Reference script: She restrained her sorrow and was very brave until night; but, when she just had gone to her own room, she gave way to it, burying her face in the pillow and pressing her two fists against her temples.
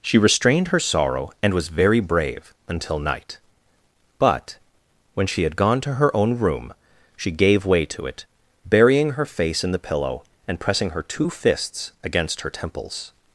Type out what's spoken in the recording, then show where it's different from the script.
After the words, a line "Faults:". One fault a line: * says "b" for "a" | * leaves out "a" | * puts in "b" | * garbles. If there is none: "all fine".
She restrained her sorrow and was very brave until night; but, when she had gone to her own room, she gave way to it, burying her face in the pillow and pressing her two fists against her temples.
Faults:
* leaves out "just"